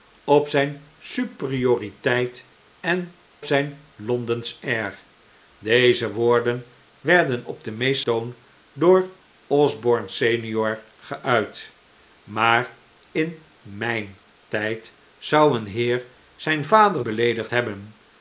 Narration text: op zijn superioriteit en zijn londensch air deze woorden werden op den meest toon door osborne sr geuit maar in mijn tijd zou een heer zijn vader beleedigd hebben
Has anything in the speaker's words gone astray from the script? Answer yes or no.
no